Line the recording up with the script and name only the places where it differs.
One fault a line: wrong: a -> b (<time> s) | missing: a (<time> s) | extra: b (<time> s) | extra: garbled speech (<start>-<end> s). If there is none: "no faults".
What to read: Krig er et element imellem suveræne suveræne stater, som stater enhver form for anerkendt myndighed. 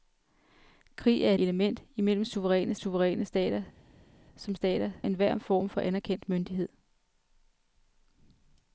no faults